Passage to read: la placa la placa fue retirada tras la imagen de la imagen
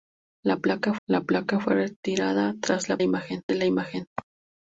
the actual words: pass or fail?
pass